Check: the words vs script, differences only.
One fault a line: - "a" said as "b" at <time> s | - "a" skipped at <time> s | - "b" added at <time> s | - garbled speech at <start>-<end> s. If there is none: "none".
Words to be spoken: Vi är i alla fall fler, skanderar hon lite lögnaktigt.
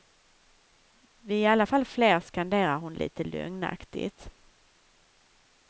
none